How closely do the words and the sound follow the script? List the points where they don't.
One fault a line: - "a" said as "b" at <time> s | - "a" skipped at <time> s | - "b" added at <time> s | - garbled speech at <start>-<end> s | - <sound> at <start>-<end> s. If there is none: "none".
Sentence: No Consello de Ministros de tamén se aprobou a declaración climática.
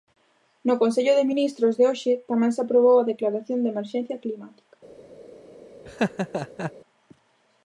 - "hoxe" added at 1.9 s
- "de emerxencia" added at 3.6 s
- laugh at 5.9-6.7 s